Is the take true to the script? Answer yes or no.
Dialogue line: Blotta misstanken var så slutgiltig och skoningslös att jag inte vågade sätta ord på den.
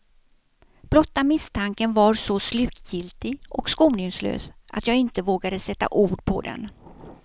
yes